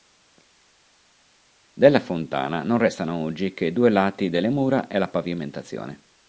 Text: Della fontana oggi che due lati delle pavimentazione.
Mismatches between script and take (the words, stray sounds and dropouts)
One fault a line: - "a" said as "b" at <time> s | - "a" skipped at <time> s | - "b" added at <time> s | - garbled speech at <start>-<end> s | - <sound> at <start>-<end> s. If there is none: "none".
- "non restano" added at 2.6 s
- "mura e la" added at 4.5 s